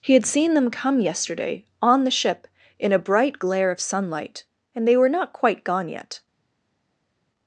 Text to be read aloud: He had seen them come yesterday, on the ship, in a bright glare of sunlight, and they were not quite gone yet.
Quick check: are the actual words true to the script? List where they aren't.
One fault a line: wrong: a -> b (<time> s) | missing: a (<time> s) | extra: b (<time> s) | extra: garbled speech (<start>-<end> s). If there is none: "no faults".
no faults